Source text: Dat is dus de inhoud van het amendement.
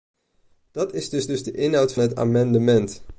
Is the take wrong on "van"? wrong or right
wrong